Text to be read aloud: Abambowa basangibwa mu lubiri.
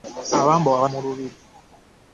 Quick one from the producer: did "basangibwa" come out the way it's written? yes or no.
no